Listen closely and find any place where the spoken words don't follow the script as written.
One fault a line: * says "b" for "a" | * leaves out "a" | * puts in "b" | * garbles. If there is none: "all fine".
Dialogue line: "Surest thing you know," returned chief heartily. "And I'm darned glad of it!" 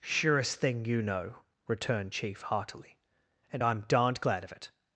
all fine